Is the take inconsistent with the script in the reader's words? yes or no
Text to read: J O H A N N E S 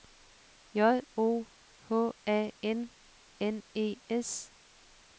no